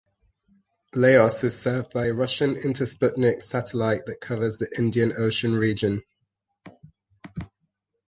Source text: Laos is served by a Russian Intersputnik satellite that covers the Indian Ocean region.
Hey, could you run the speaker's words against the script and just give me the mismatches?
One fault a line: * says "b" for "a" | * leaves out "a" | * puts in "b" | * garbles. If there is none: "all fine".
all fine